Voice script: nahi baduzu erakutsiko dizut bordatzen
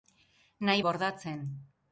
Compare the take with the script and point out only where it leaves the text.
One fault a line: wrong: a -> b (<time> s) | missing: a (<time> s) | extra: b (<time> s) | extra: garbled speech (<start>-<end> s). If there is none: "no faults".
missing: baduzu erakutsiko dizut (0.8 s)